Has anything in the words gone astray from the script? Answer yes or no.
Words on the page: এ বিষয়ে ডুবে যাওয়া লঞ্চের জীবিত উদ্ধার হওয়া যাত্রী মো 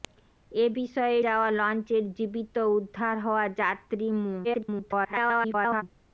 yes